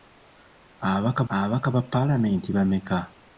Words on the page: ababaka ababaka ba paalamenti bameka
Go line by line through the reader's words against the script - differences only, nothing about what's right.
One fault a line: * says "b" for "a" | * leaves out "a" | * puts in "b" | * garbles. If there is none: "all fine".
all fine